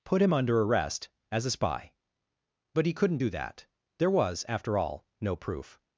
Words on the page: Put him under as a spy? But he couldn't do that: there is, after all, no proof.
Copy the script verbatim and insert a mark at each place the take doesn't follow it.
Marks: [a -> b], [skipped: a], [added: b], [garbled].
Put him under [added: arrest] as a spy? But he couldn't do that: there [is, -> was] after all, no proof.